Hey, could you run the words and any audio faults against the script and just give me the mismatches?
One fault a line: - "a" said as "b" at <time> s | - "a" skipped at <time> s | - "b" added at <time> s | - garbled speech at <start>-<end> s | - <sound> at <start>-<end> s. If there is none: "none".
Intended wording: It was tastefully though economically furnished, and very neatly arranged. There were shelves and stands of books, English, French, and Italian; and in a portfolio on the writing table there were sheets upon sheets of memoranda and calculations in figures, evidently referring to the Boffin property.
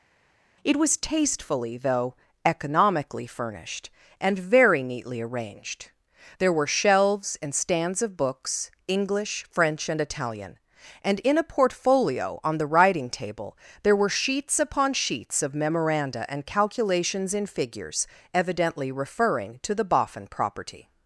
none